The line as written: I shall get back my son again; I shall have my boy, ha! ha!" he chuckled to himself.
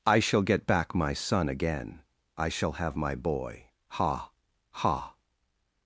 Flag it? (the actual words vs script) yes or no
yes